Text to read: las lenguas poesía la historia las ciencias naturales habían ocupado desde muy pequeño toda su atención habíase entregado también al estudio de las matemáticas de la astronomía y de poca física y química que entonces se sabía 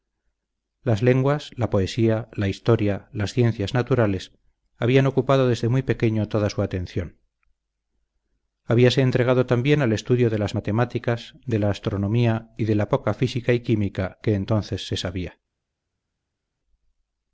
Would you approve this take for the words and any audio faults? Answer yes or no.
no